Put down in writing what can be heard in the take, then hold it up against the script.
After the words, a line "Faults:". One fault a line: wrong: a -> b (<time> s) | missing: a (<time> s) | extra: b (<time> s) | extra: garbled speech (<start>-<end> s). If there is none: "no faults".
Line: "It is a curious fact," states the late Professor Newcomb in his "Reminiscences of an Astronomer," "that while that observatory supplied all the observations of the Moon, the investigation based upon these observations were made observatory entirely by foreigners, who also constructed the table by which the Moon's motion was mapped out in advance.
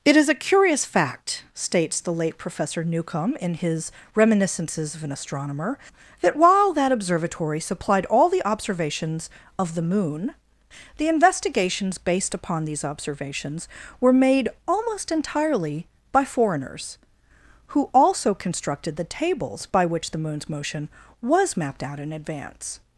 "It is a curious fact," states the late Professor Newcomb in his "Reminiscences of an Astronomer," "that while that observatory supplied all the observations of the Moon, the investigations based upon these observations were made almost entirely by foreigners, who also constructed the tables by which the Moon's motion was mapped out in advance.
Faults:
wrong: investigation -> investigations (11.1 s)
wrong: observatory -> almost (14.7 s)
wrong: table -> tables (19.0 s)